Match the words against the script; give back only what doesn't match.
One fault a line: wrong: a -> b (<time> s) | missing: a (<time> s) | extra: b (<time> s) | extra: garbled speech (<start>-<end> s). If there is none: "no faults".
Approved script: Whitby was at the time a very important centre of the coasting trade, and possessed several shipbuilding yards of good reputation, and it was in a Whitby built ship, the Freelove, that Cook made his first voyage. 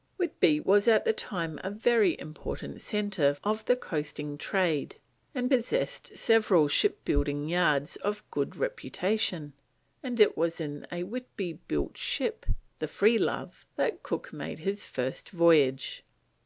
no faults